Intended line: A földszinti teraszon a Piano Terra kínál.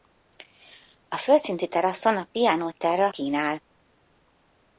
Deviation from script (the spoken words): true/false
false